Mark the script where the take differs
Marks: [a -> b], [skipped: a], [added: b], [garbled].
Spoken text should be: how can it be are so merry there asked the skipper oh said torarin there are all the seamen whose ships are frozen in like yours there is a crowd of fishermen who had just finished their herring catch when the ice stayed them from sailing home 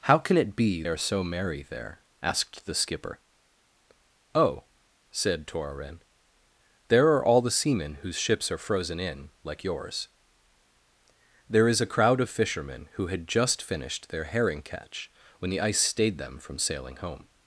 how can it be are so merry there asked the skipper oh said torarin there are all the seamen whose ships are frozen in like yours there is a crowd of fishermen who had just finished their herring catch when the ice stayed them from sailing home